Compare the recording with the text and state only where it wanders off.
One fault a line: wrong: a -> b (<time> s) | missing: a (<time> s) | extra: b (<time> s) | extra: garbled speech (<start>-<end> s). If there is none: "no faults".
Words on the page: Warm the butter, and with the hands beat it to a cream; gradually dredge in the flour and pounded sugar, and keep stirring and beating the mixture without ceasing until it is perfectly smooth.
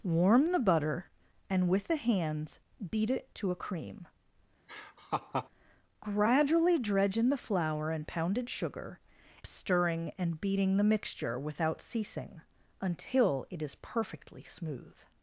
missing: and keep (9.0 s)